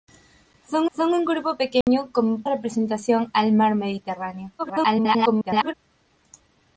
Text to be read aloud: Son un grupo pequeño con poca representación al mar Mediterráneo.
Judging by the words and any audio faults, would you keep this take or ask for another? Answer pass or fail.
fail